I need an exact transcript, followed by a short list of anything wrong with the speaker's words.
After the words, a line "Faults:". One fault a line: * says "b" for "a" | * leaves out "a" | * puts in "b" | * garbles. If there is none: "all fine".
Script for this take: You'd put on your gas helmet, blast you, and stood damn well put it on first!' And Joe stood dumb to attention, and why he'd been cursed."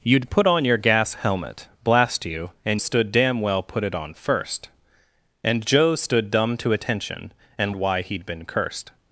You'd put on your gas helmet, blast you, and stood damn well put it on first!' And Joe stood dumb to attention, and why he'd been cursed."
Faults:
all fine